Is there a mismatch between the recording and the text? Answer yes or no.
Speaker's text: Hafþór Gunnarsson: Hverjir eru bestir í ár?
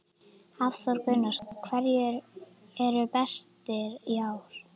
no